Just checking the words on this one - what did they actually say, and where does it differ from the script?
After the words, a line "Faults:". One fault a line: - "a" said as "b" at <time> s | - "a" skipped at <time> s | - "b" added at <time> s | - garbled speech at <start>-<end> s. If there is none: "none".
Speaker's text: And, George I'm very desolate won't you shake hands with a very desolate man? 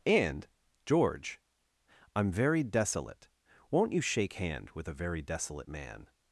And, George I'm very desolate won't you shake hand with a very desolate man?
Faults:
- "hands" said as "hand" at 4.3 s